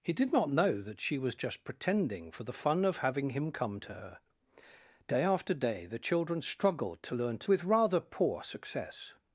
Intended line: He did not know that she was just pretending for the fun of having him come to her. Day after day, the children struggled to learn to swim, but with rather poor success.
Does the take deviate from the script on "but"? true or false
true